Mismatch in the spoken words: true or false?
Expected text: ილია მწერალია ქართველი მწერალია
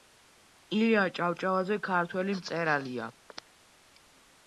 true